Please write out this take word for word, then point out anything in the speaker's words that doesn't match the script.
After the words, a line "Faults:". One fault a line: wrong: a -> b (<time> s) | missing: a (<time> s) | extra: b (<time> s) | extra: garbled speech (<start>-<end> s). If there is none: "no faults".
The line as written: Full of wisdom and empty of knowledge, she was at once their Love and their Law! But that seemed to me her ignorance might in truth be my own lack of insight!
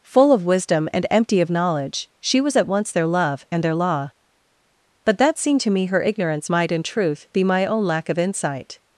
Full of wisdom and empty of knowledge, she was at once their Love and their Law! But that seemed to me her ignorance might in truth be my own lack of insight!
Faults:
no faults